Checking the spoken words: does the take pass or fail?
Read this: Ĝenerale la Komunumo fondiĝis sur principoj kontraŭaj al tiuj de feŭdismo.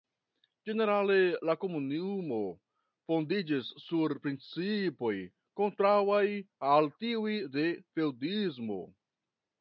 pass